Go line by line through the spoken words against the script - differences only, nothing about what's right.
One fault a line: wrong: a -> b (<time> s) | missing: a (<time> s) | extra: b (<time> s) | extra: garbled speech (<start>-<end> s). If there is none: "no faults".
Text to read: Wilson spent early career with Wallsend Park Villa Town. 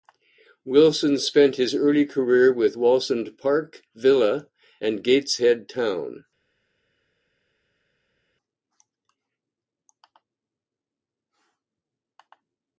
extra: his (1.6 s)
extra: and Gateshead (4.8 s)